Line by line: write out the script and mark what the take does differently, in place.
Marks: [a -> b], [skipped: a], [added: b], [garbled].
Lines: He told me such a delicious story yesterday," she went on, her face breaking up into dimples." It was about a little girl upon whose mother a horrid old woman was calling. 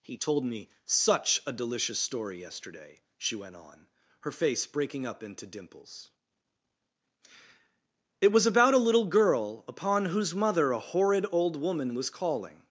He told me such a delicious story yesterday," she went on, her face breaking up into dimples." It was about a little girl upon whose mother a horrid old woman was calling.